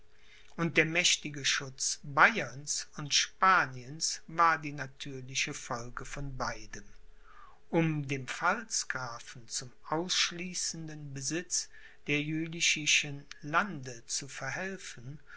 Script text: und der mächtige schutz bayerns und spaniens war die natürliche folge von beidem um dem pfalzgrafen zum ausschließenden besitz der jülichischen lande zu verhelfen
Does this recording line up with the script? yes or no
yes